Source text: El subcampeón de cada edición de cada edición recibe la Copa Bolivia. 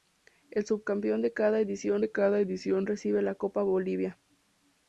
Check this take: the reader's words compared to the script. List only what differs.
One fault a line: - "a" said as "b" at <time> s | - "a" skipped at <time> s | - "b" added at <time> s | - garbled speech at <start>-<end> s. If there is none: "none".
none